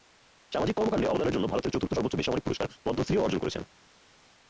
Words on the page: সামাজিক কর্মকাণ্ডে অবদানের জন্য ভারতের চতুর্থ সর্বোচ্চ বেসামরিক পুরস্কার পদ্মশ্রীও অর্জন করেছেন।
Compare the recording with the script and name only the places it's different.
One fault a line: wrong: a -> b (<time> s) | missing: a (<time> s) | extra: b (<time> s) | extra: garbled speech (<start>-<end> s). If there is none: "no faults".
no faults